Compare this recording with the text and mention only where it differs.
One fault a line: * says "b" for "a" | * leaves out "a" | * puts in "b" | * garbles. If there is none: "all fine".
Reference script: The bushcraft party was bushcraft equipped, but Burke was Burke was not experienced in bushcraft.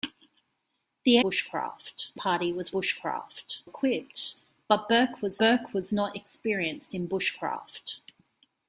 all fine